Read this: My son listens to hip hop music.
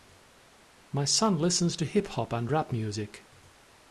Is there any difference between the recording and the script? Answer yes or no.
yes